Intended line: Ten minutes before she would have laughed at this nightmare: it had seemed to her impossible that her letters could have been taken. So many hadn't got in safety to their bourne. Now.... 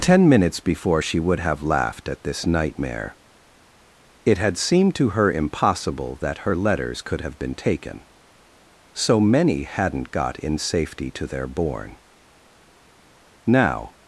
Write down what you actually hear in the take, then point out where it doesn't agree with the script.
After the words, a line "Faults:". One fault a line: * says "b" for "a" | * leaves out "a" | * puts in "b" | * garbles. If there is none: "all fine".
Ten minutes before she would have laughed at this nightmare: it had seemed to her impossible that her letters could have been taken. So many hadn't got in safety to their bourne. Now....
Faults:
all fine